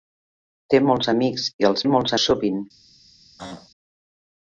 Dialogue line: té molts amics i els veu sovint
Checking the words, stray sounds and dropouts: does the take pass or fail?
fail